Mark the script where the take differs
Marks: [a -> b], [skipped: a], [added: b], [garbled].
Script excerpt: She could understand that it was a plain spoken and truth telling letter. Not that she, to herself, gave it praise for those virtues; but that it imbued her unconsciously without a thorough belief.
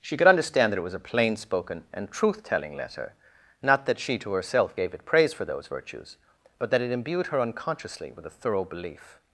She could understand that it was a plain spoken and truth telling letter. Not that she, to herself, gave it praise for those virtues; but that it imbued her unconsciously [without -> with] a thorough belief.